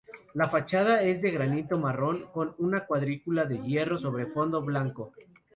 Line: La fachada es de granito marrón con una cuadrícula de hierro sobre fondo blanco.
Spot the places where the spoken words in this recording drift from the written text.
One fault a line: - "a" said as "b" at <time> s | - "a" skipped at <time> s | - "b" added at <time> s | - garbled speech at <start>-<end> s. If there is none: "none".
none